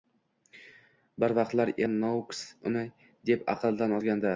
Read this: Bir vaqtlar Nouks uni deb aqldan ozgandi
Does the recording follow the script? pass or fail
pass